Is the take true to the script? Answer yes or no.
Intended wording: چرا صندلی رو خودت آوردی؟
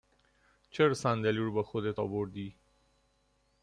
no